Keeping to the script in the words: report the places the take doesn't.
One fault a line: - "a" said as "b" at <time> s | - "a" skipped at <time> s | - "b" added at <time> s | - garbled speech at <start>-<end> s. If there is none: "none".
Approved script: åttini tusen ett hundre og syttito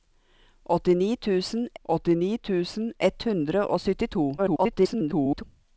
- "åttini tusen" added at 1.8 s
- garbled speech at 4.4-5.4 s